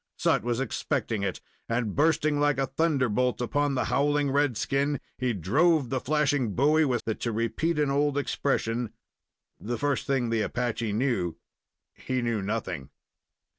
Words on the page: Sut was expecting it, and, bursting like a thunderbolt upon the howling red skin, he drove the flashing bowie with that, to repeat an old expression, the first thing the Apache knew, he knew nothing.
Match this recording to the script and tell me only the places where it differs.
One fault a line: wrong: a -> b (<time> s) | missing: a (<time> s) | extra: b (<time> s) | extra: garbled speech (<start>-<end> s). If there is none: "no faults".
no faults